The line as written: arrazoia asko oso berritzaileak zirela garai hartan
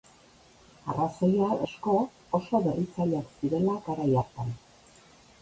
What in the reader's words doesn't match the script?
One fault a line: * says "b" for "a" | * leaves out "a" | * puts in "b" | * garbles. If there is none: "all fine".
all fine